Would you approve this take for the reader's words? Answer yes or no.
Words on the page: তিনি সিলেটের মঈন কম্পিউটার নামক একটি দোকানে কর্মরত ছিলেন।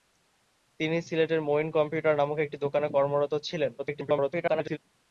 no